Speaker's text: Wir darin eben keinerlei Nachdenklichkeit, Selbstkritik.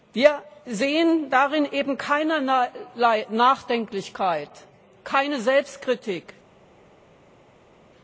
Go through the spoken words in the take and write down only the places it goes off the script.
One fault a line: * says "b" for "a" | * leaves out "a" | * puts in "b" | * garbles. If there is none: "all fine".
* puts in "sehen"
* puts in "keine"